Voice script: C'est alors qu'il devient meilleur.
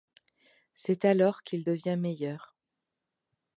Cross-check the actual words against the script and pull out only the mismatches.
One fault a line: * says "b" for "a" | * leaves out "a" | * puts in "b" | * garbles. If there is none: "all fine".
all fine